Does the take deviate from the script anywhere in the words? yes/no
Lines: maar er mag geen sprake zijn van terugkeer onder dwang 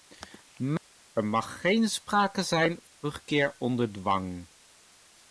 no